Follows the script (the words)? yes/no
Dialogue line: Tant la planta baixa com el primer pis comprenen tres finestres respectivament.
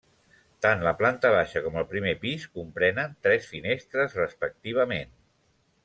yes